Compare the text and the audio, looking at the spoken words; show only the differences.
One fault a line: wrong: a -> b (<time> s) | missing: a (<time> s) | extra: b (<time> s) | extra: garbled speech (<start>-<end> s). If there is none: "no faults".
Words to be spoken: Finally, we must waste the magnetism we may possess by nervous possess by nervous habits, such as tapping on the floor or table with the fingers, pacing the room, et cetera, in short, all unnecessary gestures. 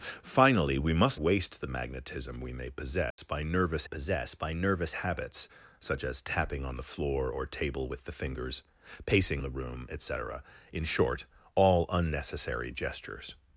no faults